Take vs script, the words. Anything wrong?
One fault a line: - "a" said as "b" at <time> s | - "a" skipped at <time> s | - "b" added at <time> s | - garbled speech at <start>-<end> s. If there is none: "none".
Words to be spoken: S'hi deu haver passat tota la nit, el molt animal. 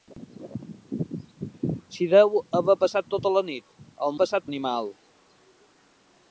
- "molt" said as "passat" at 4.2 s